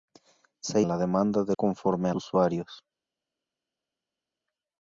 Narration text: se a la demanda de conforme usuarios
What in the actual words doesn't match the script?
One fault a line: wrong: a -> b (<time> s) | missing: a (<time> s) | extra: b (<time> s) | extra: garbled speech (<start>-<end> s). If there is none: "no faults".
no faults